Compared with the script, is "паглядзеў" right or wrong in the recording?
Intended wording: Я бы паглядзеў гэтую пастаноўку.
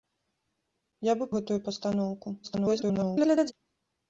wrong